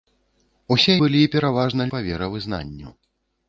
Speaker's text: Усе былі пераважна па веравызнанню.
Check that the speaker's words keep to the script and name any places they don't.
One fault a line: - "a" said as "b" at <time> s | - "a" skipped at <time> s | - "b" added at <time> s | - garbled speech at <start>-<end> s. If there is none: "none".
none